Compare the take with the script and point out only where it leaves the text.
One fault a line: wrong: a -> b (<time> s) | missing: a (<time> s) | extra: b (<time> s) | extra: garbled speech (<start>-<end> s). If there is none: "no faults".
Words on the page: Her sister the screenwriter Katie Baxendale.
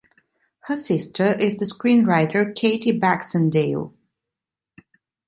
extra: is (1.4 s)